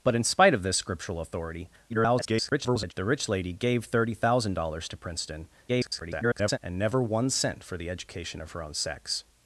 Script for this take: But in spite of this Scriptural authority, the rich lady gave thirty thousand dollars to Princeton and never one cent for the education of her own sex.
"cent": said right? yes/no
yes